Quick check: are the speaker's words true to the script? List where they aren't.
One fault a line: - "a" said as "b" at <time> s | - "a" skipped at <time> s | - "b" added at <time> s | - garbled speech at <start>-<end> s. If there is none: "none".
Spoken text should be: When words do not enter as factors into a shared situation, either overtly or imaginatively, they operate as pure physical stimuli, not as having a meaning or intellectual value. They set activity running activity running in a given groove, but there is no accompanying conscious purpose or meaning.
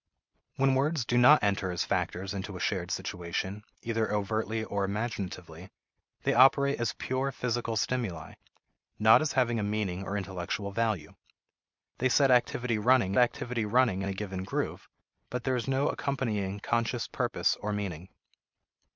none